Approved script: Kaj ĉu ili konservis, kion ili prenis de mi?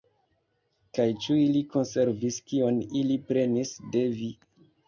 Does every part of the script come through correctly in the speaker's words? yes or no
no